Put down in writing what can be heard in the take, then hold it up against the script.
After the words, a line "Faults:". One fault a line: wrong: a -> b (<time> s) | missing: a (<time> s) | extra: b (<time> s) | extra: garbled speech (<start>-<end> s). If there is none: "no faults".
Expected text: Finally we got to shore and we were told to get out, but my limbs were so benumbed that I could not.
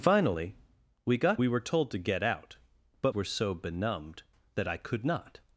Finally we got we were told to get out, but were so benumbed that I could not.
Faults:
missing: to shore and (1.4 s)
missing: my limbs (3.1 s)